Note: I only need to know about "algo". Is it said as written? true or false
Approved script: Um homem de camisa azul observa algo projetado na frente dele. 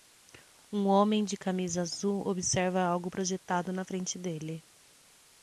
true